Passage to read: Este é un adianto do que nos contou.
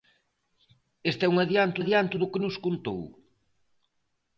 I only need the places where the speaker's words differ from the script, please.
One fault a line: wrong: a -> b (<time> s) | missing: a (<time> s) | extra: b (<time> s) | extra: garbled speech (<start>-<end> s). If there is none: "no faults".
extra: adianto (1.8 s)